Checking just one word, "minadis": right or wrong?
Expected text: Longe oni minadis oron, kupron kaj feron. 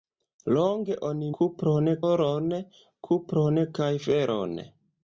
wrong